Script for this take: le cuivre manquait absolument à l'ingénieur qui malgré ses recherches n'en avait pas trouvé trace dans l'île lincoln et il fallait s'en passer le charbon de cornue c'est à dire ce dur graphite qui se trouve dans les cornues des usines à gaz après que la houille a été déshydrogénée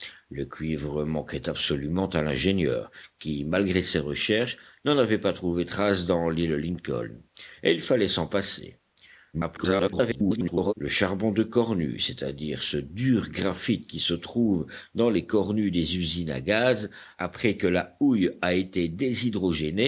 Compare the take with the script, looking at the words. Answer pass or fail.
fail